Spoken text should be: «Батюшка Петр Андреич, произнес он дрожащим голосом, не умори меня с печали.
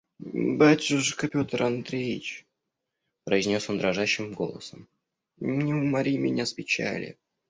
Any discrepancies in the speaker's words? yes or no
no